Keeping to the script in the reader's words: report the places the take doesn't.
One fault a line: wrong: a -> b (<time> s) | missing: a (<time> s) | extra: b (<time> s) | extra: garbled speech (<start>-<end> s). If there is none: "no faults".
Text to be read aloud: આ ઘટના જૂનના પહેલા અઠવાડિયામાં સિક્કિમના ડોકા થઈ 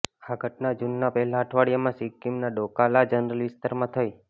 extra: લા જનરલ વિસ્તારમાં (2.9 s)